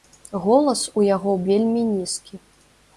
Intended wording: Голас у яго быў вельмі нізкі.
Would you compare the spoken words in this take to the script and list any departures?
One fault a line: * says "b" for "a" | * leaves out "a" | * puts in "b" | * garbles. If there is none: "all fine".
* leaves out "быў"